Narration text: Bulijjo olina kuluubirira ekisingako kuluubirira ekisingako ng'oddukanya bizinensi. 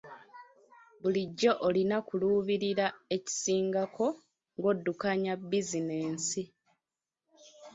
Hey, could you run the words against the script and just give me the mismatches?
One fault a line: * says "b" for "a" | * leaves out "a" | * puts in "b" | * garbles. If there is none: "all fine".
* leaves out "kuluubirira ekisingako"